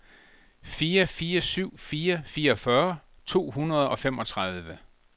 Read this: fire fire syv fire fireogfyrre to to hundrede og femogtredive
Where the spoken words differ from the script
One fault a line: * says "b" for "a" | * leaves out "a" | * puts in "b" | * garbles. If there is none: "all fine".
* leaves out "to"